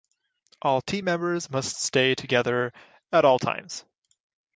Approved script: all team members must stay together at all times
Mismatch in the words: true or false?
false